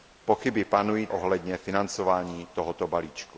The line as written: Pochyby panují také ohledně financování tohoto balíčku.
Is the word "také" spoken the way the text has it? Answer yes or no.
no